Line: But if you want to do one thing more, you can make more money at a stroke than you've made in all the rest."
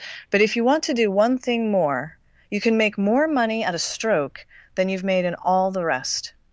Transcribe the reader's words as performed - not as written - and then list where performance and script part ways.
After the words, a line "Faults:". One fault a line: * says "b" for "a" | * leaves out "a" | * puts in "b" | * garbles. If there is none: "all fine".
But if you want to do one thing more, you can make more money at a stroke than you've made in all the rest."
Faults:
all fine